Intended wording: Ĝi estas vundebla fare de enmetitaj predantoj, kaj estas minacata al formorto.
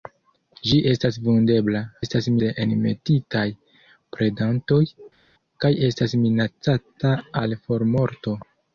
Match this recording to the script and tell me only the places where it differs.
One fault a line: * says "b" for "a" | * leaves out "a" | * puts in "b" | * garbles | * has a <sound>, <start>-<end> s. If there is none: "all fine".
* says "estas" for "fare"